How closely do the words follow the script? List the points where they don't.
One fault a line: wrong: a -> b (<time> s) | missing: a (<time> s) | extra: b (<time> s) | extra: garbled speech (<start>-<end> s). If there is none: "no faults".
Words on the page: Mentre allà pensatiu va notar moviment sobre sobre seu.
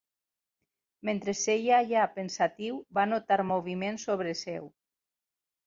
extra: seia (1.4 s)
missing: sobre (4.4 s)